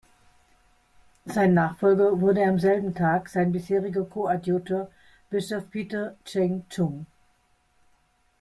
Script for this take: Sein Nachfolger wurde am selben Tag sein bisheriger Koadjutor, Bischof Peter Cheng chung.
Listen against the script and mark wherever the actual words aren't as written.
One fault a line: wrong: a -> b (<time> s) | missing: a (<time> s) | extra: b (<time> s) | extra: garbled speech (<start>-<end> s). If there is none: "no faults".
no faults